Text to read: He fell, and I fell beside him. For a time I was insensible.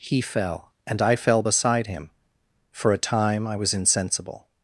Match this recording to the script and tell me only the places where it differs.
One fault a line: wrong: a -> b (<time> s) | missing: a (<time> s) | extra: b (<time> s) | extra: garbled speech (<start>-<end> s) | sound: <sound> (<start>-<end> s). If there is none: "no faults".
no faults